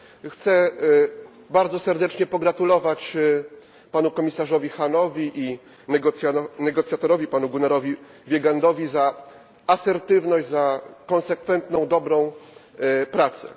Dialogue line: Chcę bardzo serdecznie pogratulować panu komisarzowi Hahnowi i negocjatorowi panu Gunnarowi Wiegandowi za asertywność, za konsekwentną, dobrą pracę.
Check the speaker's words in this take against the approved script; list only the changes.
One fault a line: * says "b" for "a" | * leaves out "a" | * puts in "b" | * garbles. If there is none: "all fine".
all fine